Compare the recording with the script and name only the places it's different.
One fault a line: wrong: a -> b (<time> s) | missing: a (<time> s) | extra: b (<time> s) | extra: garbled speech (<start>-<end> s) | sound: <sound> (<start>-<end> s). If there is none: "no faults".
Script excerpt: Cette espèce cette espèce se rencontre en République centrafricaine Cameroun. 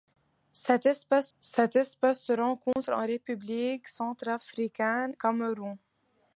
sound: dropout (2.7-2.8 s)